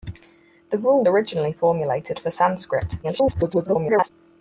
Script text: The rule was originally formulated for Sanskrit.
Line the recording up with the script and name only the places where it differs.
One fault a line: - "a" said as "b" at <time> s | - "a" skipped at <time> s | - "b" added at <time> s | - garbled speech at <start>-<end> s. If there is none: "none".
- "was" skipped at 1.1 s
- garbled speech at 3.0-4.1 s